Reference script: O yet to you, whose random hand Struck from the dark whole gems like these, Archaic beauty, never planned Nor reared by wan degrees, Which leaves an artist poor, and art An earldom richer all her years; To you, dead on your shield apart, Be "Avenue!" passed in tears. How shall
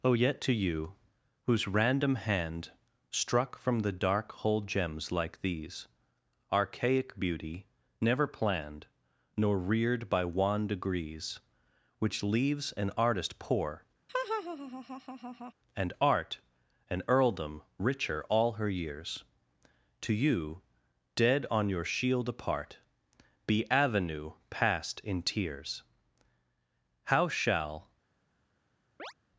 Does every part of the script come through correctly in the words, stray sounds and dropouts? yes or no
no